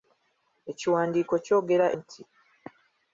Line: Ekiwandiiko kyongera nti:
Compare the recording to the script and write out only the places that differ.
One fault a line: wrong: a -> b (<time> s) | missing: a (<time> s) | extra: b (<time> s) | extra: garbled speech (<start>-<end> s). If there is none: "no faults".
no faults